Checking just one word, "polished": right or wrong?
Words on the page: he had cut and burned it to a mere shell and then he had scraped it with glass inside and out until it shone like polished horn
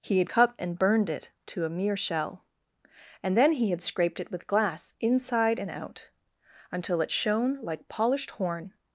right